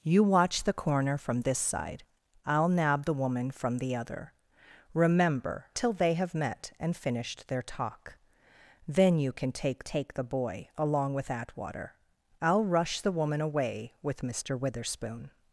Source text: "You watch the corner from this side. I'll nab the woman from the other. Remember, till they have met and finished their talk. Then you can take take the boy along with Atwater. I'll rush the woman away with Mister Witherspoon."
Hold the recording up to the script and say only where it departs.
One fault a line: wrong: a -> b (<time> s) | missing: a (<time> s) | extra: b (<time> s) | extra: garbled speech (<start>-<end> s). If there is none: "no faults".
no faults